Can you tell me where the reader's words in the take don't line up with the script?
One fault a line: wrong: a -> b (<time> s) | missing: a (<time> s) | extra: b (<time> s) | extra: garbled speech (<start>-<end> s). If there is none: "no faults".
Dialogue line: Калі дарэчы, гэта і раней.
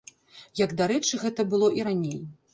wrong: Калі -> Як (0.6 s)
extra: было (1.5 s)